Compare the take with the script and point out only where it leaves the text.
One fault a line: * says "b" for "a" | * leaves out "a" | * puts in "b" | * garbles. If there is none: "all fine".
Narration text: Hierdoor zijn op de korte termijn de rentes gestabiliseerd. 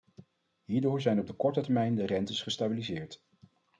all fine